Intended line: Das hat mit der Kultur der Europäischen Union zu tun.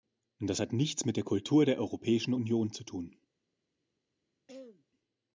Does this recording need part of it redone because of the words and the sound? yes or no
yes